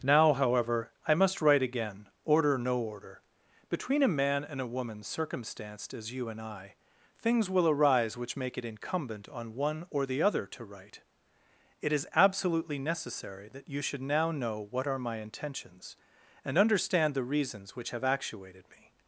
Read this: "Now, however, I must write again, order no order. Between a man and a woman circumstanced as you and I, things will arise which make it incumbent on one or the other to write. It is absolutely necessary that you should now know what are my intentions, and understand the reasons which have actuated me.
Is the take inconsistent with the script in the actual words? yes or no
no